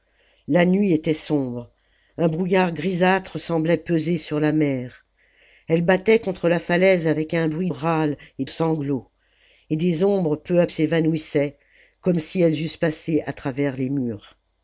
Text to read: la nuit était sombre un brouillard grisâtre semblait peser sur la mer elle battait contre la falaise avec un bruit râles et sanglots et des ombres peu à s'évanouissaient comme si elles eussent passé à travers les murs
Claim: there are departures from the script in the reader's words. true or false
false